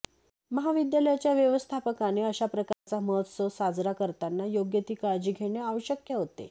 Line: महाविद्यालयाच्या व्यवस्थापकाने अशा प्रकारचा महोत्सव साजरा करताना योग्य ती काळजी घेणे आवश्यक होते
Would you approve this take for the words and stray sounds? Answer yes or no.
no